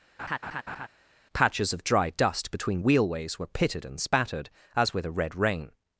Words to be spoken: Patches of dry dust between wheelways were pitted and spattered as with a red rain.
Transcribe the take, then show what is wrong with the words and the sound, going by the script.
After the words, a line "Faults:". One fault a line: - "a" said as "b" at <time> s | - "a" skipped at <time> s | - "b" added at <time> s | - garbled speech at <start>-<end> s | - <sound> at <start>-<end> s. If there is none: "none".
Patches of dry dust between wheelways were pitted and spattered as with a red rain.
Faults:
- laugh at 0.2-0.9 s